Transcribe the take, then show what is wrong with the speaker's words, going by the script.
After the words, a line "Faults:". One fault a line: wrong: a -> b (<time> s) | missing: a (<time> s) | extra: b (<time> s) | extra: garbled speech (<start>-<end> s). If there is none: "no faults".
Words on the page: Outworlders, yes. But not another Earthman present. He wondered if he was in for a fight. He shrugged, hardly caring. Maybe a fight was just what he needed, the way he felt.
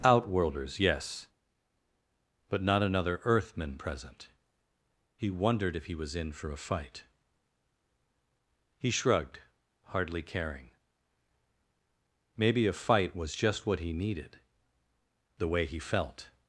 Outworlders, yes. But not another Earthman present. He wondered if he was in for a fight. He shrugged, hardly caring. Maybe a fight was just what he needed, the way he felt.
Faults:
no faults